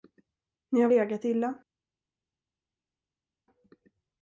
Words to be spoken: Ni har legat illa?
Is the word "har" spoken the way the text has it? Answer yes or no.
yes